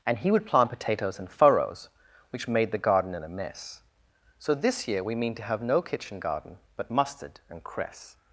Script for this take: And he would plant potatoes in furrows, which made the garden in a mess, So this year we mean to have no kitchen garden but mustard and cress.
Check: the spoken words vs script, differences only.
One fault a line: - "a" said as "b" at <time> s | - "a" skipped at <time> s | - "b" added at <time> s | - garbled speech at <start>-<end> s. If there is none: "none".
none